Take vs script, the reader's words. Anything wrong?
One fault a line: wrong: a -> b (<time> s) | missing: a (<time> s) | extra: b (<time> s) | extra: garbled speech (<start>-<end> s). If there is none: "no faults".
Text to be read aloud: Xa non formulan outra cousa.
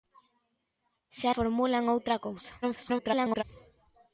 missing: non (1.3 s)
extra: garbled speech (2.6-3.4 s)